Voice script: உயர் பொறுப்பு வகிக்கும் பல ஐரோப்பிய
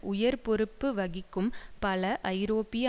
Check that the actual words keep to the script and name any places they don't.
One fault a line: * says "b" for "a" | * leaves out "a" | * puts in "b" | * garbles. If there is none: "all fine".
all fine